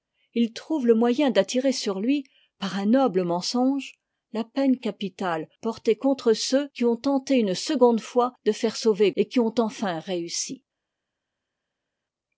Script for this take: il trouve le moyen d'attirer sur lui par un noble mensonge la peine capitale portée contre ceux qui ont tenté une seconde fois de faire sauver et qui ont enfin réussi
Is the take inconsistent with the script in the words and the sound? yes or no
no